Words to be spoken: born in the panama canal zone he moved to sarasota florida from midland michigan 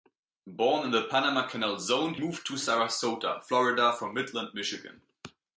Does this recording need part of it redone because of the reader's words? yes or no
yes